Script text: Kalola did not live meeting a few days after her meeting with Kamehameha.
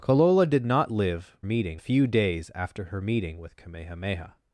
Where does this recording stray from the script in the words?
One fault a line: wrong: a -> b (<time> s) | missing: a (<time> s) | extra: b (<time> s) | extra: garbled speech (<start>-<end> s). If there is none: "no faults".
no faults